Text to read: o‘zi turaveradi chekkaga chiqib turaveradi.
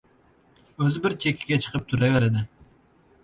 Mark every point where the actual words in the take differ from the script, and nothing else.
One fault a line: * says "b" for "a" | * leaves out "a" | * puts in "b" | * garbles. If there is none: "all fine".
* says "bir" for "turaveradi"